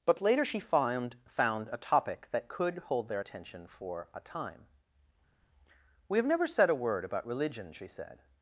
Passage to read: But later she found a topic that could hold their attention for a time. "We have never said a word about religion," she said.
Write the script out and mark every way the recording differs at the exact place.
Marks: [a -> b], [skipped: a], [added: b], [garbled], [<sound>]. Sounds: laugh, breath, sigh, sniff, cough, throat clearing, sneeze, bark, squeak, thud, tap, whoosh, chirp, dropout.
But later she found [added: found] a topic that could hold their attention for a time. "We have never said a word about religion," she said.